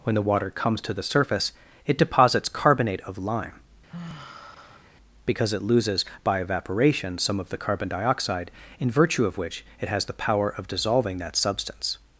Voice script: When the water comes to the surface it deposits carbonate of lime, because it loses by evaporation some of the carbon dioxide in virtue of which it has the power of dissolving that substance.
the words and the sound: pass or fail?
fail